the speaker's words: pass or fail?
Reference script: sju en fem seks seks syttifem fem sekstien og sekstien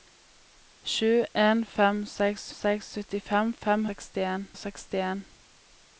pass